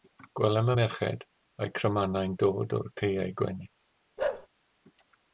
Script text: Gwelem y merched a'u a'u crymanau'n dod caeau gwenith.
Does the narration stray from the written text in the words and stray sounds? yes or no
yes